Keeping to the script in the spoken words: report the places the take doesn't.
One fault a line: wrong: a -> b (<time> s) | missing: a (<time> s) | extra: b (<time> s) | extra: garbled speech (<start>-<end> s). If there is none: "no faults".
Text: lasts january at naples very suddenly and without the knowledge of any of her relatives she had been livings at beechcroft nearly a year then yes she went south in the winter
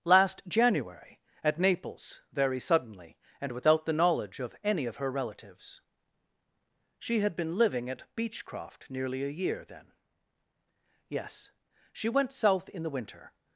wrong: lasts -> last (0.0 s)
wrong: livings -> living (7.5 s)